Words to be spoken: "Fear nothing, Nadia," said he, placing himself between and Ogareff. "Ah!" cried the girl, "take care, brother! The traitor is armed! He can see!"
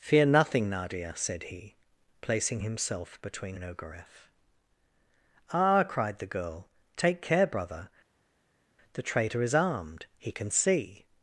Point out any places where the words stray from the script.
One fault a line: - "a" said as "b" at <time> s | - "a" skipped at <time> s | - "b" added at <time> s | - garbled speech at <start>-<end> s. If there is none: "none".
none